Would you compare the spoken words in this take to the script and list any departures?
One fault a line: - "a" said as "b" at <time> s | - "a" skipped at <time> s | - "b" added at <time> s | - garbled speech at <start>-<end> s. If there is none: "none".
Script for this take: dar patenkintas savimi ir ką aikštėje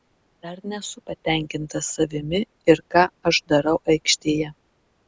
- "nesu" added at 0.7 s
- "aš darau" added at 3.3 s